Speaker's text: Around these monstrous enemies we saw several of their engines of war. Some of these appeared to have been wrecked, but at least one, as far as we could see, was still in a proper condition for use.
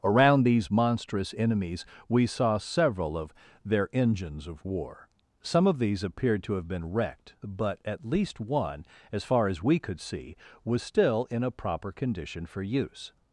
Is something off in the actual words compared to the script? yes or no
no